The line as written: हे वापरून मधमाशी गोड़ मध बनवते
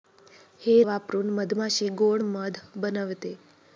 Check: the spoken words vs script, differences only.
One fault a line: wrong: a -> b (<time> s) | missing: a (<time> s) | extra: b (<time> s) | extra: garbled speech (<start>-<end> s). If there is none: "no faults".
no faults